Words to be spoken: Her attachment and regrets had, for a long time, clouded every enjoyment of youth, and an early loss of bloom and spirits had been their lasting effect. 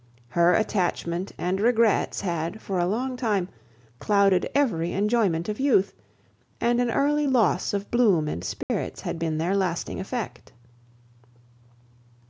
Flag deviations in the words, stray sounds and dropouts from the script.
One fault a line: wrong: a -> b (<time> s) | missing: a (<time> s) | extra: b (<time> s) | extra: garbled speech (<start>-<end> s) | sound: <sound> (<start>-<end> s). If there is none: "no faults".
sound: dropout (8.6-8.7 s)